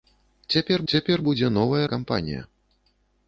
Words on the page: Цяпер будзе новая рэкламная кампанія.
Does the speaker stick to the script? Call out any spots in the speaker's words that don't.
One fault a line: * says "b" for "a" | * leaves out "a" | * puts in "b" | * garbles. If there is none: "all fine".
* puts in "цяпер"
* leaves out "рэкламная"